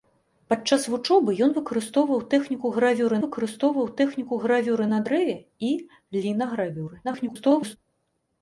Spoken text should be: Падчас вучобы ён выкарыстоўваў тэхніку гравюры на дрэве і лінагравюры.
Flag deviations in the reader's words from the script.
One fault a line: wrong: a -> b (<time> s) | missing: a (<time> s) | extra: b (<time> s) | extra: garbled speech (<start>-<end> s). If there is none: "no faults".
extra: выкарыстоўваў тэхніку гравюры (3.2 s)
extra: garbled speech (7.0-7.8 s)